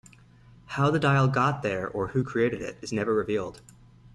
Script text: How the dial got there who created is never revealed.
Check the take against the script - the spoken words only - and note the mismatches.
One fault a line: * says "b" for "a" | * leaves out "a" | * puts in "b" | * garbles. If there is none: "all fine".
* puts in "or"
* puts in "it"